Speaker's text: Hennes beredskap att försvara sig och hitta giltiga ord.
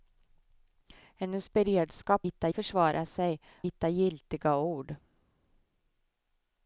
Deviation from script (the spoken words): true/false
true